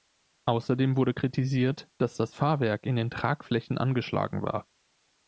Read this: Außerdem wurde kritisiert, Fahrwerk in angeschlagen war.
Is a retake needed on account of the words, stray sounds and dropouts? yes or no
yes